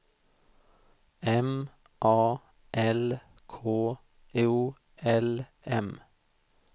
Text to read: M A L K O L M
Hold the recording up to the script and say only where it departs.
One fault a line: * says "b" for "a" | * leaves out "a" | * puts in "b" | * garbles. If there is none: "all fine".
all fine